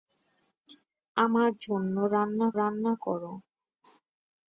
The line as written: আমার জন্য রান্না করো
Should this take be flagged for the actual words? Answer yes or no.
yes